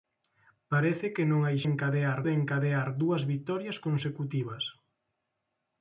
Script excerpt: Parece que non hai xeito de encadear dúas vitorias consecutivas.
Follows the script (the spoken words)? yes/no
no